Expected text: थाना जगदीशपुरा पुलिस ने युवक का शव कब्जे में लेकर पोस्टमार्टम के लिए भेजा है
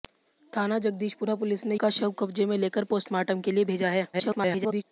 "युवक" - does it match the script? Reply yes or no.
no